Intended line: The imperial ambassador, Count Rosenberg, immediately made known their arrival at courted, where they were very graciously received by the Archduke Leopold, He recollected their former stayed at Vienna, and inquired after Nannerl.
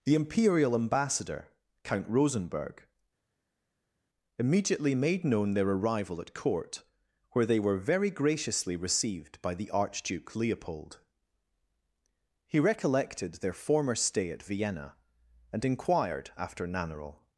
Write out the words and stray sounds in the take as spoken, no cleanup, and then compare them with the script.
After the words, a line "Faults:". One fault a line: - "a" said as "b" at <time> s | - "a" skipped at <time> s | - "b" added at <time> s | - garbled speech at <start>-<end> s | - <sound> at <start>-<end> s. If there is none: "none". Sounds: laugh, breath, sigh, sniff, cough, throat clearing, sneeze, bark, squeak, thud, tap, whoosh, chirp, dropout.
The imperial ambassador, Count Rosenberg, immediately made known their arrival at court, where they were very graciously received by the Archduke Leopold, He recollected their former stay at Vienna, and inquired after Nannerl.
Faults:
- "courted" said as "court" at 6.3 s
- "stayed" said as "stay" at 13.9 s